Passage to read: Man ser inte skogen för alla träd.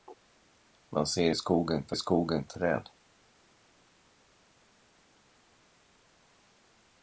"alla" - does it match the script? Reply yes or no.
no